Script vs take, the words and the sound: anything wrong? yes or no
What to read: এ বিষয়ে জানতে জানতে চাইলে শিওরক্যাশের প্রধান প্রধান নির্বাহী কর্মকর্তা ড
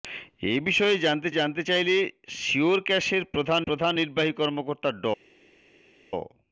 no